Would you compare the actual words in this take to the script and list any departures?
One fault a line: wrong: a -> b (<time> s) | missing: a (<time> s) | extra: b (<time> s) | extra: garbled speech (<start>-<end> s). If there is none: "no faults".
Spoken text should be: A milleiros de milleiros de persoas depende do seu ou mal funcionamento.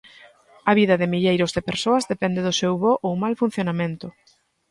wrong: milleiros -> vida (0.8 s)
extra: bo (2.8 s)